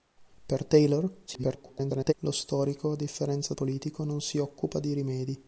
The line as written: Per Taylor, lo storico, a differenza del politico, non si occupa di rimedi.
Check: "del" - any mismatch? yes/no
yes